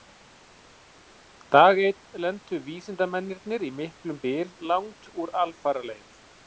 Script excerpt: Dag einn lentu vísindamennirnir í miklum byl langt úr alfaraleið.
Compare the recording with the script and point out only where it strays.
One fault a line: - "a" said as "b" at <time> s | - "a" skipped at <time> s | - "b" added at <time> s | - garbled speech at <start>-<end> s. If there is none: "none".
none